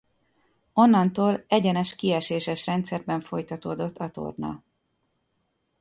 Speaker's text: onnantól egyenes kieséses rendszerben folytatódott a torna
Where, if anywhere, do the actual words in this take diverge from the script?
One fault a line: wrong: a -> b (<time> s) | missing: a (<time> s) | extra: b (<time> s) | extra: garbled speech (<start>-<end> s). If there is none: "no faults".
no faults